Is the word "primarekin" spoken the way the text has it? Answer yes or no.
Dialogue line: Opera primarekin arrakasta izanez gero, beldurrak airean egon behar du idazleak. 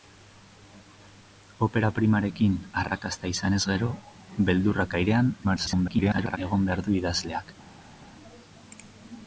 yes